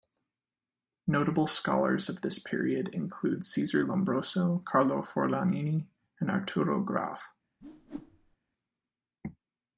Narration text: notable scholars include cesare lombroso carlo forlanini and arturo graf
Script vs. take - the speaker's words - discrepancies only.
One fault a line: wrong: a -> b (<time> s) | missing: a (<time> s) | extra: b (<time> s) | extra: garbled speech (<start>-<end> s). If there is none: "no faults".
extra: of this period (2.1 s)